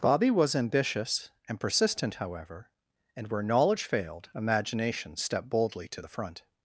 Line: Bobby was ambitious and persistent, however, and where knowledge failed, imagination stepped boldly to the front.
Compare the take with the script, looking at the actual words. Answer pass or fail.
pass